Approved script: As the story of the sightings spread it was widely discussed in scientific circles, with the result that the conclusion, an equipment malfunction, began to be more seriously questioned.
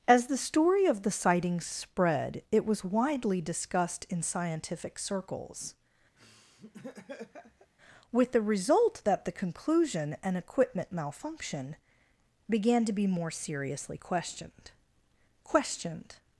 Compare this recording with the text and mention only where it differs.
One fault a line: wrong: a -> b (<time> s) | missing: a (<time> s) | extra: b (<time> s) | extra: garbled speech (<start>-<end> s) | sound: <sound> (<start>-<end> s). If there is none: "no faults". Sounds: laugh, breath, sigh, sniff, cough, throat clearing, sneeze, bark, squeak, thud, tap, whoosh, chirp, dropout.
sound: laugh (6.2-7.7 s)
extra: questioned (15.4 s)